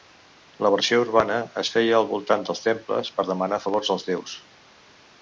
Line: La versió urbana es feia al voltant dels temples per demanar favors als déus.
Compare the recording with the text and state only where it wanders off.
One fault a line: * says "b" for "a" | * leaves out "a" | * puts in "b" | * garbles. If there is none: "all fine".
all fine